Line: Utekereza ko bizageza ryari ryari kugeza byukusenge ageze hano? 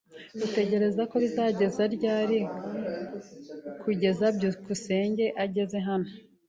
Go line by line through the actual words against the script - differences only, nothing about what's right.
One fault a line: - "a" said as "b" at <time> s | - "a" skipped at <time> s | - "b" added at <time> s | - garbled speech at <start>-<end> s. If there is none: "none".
- "ryari" skipped at 2.4 s